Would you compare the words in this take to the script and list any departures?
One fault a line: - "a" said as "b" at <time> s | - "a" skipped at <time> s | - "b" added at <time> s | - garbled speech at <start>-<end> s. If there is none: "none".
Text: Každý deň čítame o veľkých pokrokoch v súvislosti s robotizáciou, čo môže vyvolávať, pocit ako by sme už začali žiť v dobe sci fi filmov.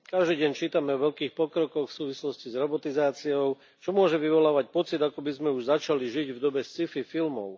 none